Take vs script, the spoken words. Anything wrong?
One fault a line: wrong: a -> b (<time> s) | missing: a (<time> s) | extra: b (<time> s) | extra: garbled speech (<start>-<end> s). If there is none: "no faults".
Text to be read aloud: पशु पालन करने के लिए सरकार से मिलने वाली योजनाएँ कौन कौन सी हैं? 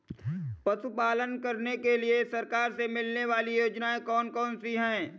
no faults